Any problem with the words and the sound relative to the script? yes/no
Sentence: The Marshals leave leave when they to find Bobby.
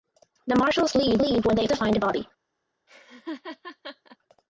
yes